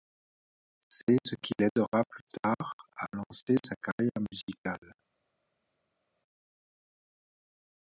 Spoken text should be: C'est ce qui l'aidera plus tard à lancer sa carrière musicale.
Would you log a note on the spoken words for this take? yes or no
no